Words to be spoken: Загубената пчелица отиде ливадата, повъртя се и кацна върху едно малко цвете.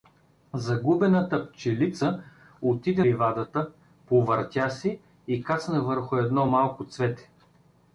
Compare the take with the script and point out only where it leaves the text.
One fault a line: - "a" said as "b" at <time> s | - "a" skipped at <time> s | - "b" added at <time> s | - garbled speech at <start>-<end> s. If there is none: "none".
none